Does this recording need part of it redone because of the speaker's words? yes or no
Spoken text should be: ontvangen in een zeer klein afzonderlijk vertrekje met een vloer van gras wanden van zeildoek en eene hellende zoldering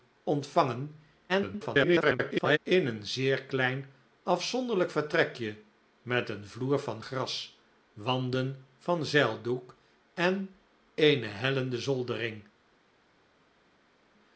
yes